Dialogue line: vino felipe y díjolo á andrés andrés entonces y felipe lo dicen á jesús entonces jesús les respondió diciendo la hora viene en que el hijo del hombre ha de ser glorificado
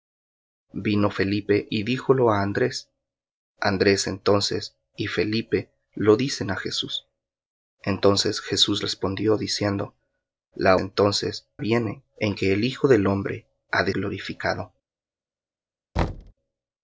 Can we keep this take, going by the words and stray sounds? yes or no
no